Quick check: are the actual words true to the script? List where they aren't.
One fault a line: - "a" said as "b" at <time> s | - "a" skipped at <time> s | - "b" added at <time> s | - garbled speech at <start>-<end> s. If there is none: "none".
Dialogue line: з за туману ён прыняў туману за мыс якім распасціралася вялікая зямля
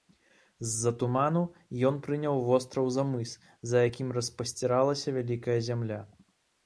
- "туману" said as "востраў" at 2.5 s
- "за" added at 3.7 s